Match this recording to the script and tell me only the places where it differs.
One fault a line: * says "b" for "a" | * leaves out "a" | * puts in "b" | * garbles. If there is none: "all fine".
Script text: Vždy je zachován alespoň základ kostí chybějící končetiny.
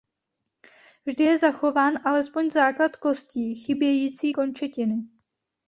all fine